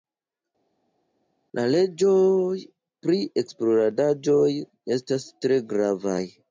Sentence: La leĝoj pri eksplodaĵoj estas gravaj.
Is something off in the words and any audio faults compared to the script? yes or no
yes